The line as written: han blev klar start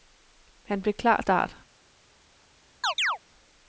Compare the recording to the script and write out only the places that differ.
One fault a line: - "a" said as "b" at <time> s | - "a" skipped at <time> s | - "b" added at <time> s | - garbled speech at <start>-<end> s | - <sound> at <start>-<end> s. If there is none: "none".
- chirp at 2.8-3.2 s